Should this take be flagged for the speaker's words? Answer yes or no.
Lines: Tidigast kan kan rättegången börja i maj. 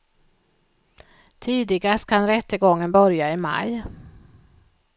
yes